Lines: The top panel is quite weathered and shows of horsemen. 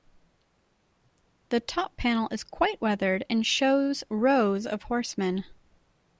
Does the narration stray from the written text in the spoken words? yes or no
yes